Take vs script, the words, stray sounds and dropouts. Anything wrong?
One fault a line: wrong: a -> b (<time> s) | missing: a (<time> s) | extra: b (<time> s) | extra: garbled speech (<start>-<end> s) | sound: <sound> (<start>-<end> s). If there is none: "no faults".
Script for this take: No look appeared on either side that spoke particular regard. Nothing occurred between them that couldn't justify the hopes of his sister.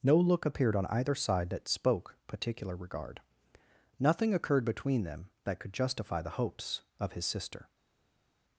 wrong: couldn't -> could (5.6 s)